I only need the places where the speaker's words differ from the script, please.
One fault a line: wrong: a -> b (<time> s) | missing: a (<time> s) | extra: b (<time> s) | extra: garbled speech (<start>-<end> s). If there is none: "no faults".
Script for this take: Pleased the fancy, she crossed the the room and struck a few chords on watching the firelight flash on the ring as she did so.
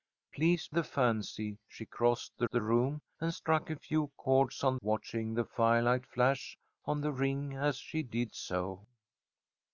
no faults